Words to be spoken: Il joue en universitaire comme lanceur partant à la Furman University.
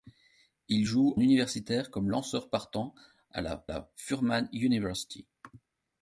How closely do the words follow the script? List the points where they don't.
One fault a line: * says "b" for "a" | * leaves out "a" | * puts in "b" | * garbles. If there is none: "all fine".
* leaves out "en"
* puts in "la"